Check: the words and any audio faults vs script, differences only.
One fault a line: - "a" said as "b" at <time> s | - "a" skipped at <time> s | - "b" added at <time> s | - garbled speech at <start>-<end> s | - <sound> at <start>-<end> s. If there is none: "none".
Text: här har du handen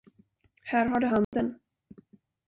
- dropout at 1.2-1.3 s